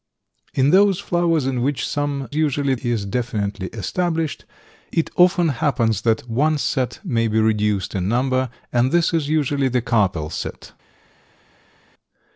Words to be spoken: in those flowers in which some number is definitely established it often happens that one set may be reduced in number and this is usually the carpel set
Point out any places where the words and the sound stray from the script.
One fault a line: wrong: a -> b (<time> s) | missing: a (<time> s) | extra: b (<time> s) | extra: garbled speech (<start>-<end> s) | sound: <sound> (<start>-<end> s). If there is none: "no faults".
wrong: number -> usually (2.3 s)